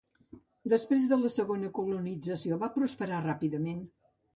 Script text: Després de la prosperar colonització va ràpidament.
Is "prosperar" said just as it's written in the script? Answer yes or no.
no